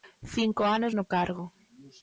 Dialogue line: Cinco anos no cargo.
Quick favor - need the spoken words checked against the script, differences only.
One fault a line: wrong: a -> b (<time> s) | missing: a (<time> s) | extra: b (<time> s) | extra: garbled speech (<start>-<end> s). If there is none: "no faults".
no faults